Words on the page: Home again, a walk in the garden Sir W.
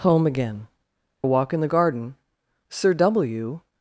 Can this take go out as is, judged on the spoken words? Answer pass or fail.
pass